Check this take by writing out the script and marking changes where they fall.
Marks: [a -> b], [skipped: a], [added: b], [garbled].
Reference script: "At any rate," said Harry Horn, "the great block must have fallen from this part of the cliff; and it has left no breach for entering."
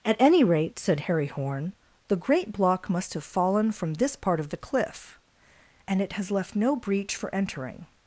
"At any rate," said Harry Horn, "the great block must have fallen from this part of the cliff; and it has left no breach for entering."